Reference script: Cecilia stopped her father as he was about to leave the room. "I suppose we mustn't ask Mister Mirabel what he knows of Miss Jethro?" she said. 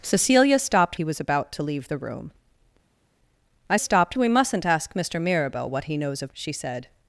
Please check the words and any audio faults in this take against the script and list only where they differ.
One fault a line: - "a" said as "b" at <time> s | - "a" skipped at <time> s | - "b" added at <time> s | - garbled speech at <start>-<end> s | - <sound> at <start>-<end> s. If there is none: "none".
- "her father as" skipped at 0.9 s
- "suppose" said as "stopped" at 3.8 s
- "Miss Jethro" skipped at 6.3 s